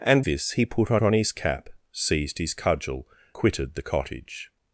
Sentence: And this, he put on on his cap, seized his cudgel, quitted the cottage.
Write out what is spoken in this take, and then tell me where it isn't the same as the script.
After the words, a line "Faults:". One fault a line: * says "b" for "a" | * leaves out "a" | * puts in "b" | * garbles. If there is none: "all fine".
And this, he put on on his cap, seized his cudgel, quitted the cottage.
Faults:
all fine